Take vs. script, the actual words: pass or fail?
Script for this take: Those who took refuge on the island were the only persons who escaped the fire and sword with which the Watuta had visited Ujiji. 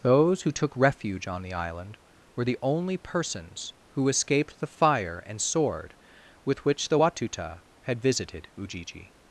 pass